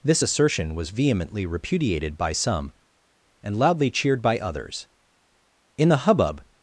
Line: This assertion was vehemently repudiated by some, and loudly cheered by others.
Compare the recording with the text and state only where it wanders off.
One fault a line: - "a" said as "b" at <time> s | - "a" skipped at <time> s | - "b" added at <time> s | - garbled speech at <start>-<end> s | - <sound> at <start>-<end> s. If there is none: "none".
- "In the hubbub" added at 5.8 s